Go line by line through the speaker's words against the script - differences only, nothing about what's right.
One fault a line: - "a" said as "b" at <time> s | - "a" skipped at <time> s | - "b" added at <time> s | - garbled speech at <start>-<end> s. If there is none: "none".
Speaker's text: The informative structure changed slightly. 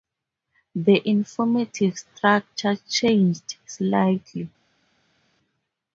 none